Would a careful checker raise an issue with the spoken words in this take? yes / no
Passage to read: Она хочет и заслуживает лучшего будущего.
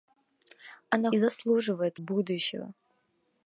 yes